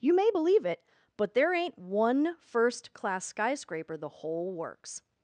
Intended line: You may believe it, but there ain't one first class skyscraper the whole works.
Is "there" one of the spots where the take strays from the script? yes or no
no